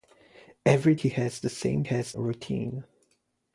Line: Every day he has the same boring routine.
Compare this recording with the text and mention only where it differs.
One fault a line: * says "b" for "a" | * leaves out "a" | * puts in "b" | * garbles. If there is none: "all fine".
* leaves out "day"
* says "has" for "boring"